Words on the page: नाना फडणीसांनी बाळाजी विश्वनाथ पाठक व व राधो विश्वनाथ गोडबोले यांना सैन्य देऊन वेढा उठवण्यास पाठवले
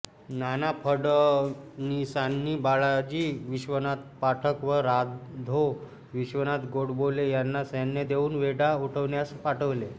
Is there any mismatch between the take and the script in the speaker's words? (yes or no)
yes